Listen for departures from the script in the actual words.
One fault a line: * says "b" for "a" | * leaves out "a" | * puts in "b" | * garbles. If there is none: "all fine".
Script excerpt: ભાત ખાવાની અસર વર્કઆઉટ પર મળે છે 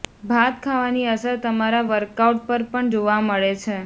* puts in "તમારા"
* puts in "પણ જોવા"